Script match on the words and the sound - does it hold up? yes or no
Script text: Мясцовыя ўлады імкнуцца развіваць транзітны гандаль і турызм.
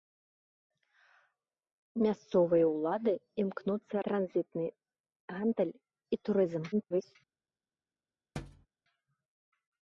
no